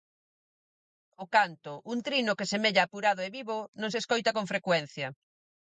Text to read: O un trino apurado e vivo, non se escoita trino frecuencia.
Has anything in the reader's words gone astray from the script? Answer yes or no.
yes